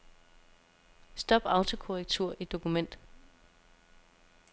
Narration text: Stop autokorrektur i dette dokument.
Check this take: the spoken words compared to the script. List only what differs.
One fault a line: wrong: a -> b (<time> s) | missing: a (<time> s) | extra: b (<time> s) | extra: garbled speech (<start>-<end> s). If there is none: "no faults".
missing: dette (2.5 s)